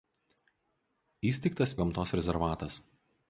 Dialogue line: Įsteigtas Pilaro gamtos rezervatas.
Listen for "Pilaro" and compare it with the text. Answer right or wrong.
wrong